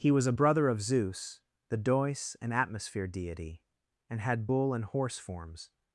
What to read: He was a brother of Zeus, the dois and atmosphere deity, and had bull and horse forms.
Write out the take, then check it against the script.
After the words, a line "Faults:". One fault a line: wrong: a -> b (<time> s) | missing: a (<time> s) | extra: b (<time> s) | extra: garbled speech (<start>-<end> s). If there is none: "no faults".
He was a brother of Zeus, the dois and atmosphere deity, and had bull and horse forms.
Faults:
no faults